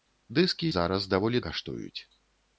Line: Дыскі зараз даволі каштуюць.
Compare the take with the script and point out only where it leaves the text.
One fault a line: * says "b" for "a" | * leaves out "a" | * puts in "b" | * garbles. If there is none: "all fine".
all fine